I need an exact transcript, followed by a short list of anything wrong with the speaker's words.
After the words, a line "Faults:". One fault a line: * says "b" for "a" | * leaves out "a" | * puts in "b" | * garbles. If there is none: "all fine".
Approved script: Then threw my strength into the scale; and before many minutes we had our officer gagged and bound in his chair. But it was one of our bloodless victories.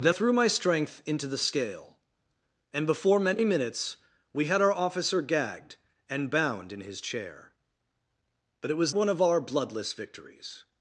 Then threw my strength into the scale; and before many minutes we had our officer gagged and bound in his chair. But it was one of our bloodless victories.
Faults:
all fine